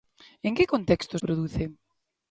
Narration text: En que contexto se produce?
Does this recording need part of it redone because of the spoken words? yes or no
yes